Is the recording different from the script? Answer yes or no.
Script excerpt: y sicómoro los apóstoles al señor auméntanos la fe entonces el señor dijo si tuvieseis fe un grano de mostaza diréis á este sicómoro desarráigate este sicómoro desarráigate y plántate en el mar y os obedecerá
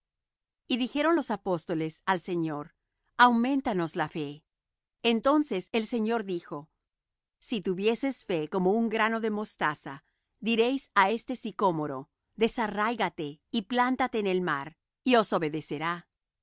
yes